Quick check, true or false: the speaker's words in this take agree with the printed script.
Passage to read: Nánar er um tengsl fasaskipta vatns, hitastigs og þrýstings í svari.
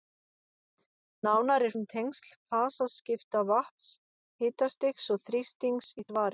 true